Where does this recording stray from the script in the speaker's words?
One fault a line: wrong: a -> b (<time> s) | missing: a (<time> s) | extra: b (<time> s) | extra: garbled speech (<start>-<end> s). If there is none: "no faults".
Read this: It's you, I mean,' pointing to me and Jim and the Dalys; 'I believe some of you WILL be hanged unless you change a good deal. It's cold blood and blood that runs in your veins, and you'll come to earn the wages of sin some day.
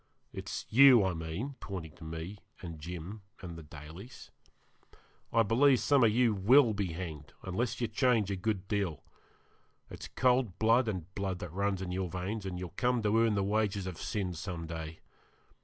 no faults